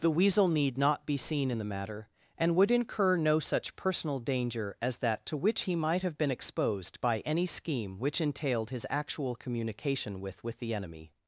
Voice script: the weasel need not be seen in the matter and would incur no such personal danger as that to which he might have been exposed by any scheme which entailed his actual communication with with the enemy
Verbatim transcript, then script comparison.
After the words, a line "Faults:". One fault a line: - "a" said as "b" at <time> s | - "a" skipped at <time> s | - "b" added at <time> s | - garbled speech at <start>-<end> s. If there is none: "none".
the weasel need not be seen in the matter and would incur no such personal danger as that to which he might have been exposed by any scheme which entailed his actual communication with with the enemy
Faults:
none